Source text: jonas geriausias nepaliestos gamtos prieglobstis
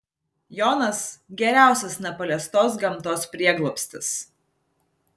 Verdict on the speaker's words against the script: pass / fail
pass